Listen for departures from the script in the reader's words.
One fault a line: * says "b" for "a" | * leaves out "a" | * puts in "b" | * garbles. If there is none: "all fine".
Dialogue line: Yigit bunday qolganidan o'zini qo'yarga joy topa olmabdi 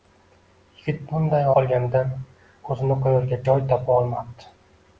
all fine